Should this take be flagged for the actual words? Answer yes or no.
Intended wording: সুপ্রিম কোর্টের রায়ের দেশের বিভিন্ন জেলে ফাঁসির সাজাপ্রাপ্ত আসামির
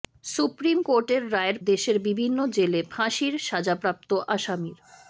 no